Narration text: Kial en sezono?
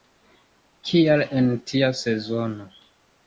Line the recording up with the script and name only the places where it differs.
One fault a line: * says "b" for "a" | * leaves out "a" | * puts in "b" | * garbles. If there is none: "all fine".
* puts in "tia"